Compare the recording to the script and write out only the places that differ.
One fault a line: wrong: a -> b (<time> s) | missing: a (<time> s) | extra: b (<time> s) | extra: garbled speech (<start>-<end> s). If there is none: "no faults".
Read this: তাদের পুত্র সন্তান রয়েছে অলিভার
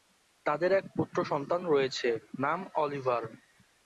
extra: এক (0.7 s)
extra: নাম (2.4 s)